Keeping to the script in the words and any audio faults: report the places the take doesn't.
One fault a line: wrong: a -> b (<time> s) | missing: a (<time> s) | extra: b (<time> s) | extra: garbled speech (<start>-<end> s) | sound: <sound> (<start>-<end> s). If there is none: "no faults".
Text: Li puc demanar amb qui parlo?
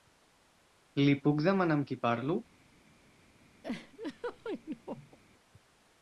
sound: laugh (3.6-5.2 s)